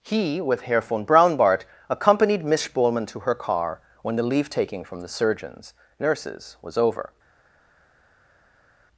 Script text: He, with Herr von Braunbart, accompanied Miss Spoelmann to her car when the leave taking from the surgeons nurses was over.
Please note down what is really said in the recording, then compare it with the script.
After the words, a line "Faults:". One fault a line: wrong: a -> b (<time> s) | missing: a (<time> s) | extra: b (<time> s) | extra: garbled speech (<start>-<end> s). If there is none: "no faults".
He, with Herr von Braunbart, accompanied Miss Spoelmann to her car when the leave taking from the surgeons nurses was over.
Faults:
no faults